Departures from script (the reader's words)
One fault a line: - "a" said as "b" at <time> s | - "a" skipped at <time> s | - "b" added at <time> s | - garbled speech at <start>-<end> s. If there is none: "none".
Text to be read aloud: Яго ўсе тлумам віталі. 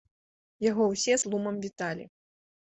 none